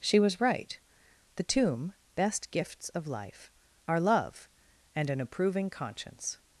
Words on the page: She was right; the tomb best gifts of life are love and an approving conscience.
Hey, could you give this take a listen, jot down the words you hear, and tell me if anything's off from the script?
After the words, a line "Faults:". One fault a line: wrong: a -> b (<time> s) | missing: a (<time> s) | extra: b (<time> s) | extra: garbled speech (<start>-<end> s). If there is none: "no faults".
She was right; the tomb best gifts of life are love and an approving conscience.
Faults:
no faults